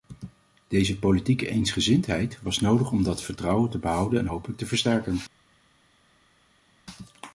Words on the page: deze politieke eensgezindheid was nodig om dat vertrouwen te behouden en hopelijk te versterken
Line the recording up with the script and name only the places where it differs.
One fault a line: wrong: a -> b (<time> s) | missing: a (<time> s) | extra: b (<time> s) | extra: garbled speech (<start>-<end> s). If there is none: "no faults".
no faults